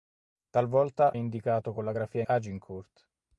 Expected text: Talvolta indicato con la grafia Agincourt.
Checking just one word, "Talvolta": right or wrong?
right